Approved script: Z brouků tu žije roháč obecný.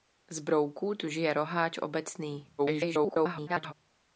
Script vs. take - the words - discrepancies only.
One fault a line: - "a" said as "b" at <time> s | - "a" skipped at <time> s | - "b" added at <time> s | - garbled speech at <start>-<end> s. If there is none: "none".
- garbled speech at 2.6-3.7 s